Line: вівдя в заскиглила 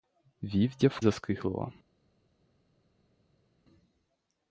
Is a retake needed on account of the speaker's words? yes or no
no